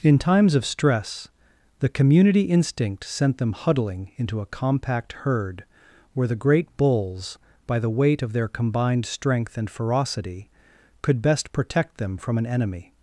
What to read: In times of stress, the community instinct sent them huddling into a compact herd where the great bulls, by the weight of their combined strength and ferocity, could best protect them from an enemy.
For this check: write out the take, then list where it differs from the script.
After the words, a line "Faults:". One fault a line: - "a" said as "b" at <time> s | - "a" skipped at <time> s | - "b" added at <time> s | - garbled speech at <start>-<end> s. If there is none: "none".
In times of stress, the community instinct sent them huddling into a compact herd where the great bulls, by the weight of their combined strength and ferocity, could best protect them from an enemy.
Faults:
none